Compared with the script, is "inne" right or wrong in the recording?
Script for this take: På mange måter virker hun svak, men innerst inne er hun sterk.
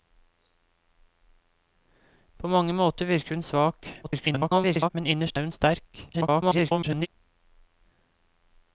wrong